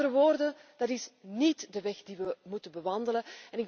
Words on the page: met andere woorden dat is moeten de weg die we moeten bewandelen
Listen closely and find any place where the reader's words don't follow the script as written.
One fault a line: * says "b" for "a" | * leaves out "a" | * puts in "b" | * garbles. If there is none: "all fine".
* says "niet" for "moeten"